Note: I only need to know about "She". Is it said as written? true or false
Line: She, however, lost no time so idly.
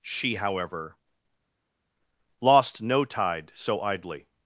true